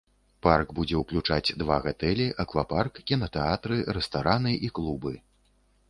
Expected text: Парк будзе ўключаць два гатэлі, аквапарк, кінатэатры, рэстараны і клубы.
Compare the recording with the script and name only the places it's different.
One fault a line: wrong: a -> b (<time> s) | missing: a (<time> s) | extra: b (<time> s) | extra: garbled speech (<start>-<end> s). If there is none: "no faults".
no faults